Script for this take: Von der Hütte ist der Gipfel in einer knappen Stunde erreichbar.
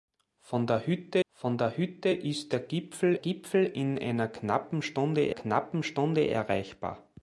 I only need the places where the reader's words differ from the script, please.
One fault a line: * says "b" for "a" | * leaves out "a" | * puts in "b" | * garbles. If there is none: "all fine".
* puts in "von der Hütte"
* puts in "Gipfel"
* puts in "knappen Stunde"